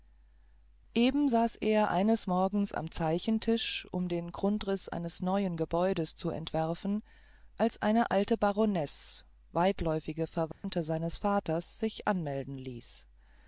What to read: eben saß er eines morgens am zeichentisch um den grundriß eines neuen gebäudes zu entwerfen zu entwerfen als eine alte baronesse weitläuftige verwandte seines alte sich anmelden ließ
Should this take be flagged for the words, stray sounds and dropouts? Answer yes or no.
yes